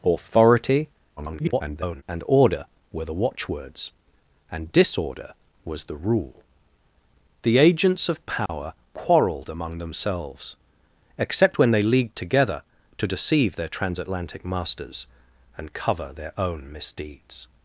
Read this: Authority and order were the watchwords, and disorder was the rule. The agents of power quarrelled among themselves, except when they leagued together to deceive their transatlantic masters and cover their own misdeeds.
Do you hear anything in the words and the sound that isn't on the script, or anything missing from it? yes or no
yes